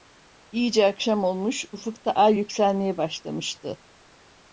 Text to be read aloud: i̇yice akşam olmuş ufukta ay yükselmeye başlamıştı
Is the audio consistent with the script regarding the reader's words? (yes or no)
yes